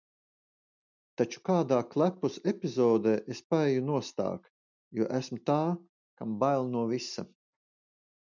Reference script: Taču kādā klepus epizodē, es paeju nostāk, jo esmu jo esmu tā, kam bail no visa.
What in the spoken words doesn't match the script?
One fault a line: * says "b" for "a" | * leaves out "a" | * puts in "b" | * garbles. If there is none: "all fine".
* leaves out "jo esmu"